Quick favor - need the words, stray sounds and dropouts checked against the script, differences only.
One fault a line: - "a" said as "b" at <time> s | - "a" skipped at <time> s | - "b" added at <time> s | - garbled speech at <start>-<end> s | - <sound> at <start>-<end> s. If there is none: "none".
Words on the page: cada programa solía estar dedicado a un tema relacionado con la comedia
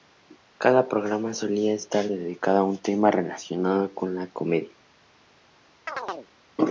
- chirp at 5.9-6.3 s